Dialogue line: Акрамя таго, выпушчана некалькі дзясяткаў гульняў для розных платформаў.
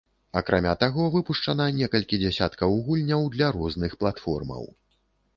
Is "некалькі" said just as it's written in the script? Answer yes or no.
yes